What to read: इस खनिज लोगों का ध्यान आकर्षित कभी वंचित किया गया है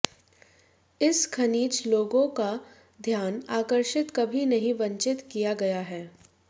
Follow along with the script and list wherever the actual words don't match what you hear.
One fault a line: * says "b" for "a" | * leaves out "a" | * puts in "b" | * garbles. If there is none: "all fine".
* puts in "नहीं"